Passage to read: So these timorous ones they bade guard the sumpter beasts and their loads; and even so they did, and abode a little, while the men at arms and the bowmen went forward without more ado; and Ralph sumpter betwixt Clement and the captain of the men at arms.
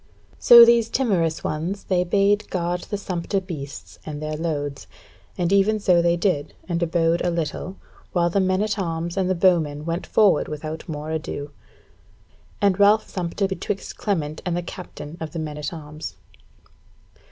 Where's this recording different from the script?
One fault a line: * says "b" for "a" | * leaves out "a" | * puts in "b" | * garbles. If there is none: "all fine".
all fine